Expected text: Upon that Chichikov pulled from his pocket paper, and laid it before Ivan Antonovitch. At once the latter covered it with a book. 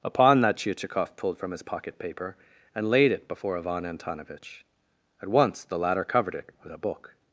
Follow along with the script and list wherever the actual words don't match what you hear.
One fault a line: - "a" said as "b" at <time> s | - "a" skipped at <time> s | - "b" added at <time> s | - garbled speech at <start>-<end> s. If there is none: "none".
none